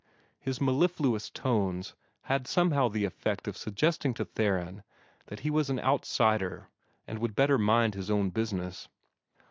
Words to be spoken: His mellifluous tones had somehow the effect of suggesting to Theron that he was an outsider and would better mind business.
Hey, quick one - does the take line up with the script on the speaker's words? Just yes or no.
no